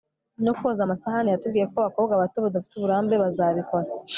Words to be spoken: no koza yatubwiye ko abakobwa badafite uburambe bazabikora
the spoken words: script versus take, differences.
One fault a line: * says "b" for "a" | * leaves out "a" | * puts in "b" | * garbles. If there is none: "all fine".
* puts in "amasahani"
* puts in "bato"